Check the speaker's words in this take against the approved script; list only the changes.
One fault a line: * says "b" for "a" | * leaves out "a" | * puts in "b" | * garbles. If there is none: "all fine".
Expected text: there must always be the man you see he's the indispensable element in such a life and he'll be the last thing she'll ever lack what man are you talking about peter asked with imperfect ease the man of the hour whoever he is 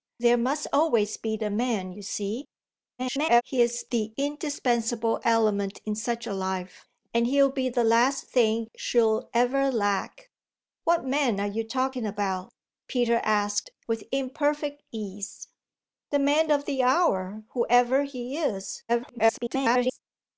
* garbles
* garbles